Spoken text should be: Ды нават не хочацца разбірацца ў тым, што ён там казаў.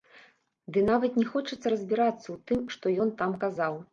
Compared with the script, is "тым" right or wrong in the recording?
right